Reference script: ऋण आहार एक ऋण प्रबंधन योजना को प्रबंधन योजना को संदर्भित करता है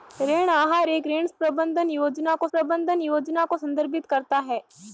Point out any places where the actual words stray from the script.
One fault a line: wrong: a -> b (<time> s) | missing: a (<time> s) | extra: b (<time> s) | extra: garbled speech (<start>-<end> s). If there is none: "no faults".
no faults